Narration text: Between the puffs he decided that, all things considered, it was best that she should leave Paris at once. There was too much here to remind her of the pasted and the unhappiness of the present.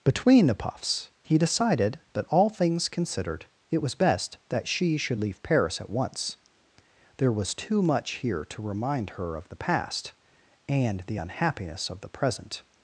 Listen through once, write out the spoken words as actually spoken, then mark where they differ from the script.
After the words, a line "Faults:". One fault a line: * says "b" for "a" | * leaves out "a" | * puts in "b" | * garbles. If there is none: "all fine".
Between the puffs he decided that, all things considered, it was best that she should leave Paris at once. There was too much here to remind her of the past and the unhappiness of the present.
Faults:
* says "past" for "pasted"